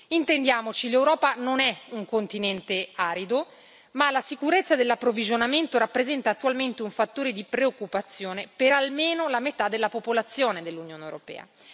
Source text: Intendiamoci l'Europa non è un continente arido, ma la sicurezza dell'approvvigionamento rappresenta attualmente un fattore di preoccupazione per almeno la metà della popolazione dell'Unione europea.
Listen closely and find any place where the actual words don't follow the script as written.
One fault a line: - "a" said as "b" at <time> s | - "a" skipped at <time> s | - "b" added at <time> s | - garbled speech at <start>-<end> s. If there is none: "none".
none